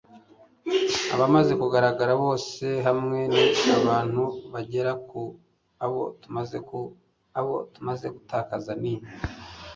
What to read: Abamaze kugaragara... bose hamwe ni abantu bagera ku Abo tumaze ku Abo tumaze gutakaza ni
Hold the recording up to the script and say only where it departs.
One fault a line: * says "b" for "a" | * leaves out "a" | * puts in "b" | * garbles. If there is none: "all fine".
all fine